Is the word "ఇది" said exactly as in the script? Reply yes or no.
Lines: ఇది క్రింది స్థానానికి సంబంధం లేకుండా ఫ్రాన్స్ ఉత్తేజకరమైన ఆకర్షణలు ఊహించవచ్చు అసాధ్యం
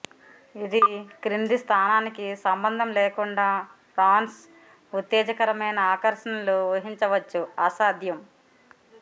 yes